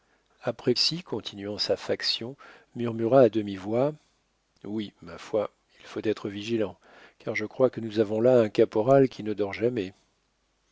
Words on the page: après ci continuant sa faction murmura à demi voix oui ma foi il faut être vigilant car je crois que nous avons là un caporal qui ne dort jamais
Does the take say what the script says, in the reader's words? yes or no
yes